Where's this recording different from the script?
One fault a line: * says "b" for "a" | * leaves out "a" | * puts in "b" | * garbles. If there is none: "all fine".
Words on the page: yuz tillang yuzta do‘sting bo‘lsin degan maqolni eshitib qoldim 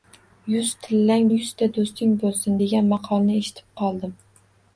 all fine